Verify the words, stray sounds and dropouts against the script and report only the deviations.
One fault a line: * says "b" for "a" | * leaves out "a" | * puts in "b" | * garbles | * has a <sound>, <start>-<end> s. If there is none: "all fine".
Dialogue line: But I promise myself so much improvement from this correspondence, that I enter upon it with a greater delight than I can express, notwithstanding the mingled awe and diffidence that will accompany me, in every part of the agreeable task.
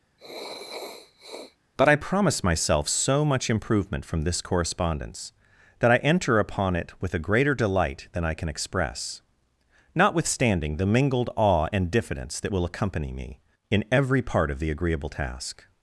* has a sniff, 0.2-1.6 s